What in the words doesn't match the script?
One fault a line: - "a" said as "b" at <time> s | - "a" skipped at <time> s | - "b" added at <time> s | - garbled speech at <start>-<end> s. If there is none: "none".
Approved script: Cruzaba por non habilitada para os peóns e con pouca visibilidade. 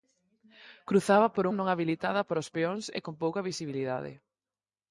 none